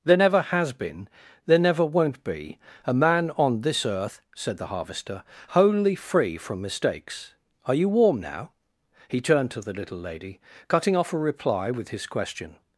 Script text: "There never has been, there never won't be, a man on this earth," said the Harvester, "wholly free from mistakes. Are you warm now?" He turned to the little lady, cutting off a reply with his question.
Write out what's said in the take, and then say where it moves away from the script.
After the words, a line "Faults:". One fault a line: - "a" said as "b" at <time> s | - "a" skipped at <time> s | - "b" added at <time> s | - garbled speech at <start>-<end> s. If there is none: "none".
"There never has been, there never won't be, a man on this earth," said the Harvester, "wholly free from mistakes. Are you warm now?" He turned to the little lady, cutting off a reply with his question.
Faults:
none